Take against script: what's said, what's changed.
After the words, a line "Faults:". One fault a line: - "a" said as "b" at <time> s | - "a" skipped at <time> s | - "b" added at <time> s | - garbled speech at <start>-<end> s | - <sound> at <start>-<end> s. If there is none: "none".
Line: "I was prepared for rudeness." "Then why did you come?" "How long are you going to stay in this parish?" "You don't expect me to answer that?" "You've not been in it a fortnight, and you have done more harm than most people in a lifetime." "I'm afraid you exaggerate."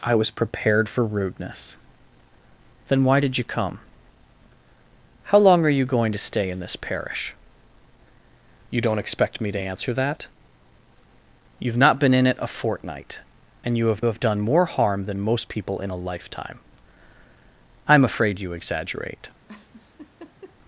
"I was prepared for rudeness." "Then why did you come?" "How long are you going to stay in this parish?" "You don't expect me to answer that?" "You've not been in it a fortnight, and you have have done more harm than most people in a lifetime." "I'm afraid you exaggerate."
Faults:
- "have" added at 14.0 s
- laugh at 19.5-20.6 s